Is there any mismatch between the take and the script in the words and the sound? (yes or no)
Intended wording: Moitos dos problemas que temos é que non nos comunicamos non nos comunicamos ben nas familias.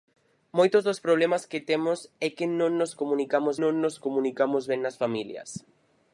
no